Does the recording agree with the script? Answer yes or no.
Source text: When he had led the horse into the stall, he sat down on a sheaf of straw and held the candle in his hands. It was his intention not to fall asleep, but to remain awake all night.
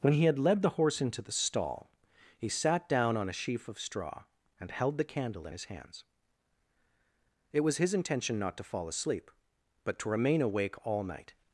yes